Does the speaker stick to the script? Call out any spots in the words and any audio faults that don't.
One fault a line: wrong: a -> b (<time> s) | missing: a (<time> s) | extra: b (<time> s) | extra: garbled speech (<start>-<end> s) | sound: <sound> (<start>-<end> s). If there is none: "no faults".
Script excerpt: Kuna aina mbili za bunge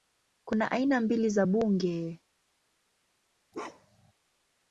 sound: bark (3.5-4.1 s)